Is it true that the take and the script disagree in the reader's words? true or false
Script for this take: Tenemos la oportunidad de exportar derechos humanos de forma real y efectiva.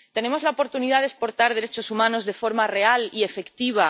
false